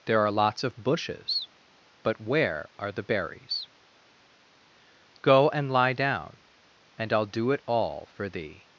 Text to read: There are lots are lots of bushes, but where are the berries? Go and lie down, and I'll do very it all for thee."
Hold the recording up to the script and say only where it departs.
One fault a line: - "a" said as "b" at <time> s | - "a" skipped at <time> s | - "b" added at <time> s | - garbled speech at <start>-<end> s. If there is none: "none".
- "are lots" skipped at 0.6 s
- "very" skipped at 7.5 s